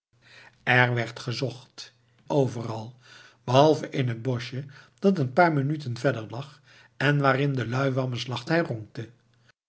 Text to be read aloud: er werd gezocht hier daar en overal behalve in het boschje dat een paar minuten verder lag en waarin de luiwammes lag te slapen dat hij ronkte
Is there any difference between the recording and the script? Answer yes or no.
yes